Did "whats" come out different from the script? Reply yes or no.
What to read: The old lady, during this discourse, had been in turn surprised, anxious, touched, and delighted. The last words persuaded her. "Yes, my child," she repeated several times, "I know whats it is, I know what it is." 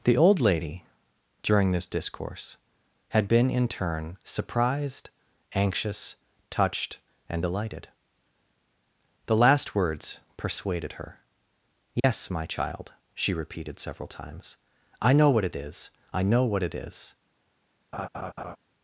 yes